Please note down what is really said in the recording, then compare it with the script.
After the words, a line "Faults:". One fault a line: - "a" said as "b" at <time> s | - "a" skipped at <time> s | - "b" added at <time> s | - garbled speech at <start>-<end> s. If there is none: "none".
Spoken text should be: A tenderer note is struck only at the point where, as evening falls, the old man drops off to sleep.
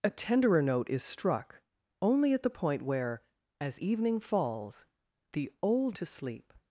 A tenderer note is struck only at the point where, as evening falls, the old to sleep.
Faults:
- "man drops off" skipped at 6.0 s